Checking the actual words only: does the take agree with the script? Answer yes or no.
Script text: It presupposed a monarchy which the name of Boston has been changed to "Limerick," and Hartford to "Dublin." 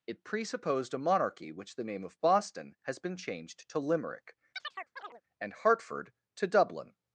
yes